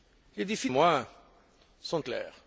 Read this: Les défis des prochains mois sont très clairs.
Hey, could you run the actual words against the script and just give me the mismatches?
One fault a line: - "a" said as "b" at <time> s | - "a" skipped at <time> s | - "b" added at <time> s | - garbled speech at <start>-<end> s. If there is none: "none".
- "des prochains" skipped at 0.7 s
- "très" skipped at 2.0 s